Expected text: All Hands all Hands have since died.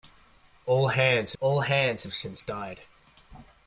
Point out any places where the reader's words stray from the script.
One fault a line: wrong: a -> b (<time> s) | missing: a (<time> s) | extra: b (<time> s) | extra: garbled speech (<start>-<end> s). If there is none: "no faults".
no faults